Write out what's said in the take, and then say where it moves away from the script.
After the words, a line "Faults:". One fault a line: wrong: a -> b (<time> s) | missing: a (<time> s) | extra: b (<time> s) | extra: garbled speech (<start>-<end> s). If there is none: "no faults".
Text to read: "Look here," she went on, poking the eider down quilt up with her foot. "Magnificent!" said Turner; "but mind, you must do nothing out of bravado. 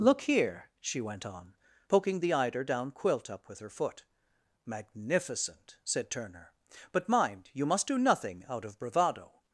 "Look here," she went on, poking the eider down quilt up with her foot. "Magnificent!" said Turner; "but mind, you must do nothing out of bravado.
Faults:
no faults